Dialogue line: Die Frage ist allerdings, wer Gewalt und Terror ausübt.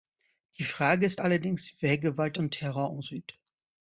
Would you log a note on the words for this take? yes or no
no